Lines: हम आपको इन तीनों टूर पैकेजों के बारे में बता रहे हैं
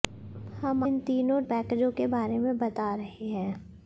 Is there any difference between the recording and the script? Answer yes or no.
yes